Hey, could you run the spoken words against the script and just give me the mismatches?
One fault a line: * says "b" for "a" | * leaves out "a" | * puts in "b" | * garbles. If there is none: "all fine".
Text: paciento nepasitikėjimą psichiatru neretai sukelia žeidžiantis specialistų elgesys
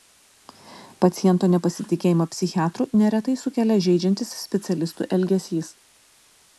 all fine